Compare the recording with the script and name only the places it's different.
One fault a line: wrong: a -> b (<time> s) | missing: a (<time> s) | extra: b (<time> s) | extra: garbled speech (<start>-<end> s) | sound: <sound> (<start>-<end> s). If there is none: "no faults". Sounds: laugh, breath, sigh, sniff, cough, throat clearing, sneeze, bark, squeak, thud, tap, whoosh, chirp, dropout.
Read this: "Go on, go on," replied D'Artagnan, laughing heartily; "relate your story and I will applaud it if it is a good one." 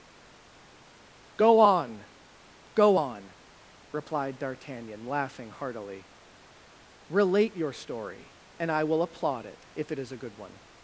no faults